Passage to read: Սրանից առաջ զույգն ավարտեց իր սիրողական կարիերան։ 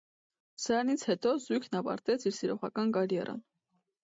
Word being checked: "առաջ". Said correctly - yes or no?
no